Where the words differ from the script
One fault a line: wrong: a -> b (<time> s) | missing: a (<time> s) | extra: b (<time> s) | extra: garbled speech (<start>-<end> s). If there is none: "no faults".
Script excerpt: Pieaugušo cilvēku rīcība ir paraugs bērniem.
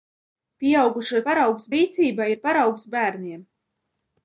wrong: cilvēku -> paraugs (1.3 s)